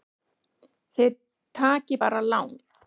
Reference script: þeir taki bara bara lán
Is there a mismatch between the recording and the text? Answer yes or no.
yes